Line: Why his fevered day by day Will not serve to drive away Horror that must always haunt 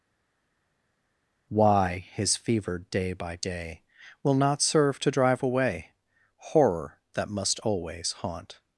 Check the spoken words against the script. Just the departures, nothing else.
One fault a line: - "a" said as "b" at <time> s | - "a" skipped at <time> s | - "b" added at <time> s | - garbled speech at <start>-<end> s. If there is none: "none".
none